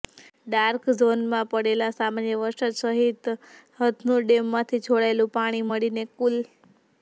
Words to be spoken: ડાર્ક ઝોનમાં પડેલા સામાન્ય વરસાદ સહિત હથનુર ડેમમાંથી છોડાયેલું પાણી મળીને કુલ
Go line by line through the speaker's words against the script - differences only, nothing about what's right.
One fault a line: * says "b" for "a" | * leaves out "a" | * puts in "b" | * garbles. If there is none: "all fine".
all fine